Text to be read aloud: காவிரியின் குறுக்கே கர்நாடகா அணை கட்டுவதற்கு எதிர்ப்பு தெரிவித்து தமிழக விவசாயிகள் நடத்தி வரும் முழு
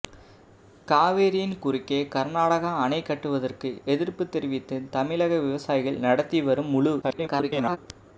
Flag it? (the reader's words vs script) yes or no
yes